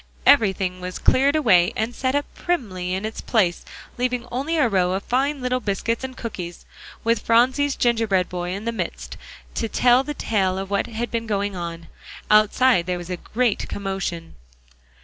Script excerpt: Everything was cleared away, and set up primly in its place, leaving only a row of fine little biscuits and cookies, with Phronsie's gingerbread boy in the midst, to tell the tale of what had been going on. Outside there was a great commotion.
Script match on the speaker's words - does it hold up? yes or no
yes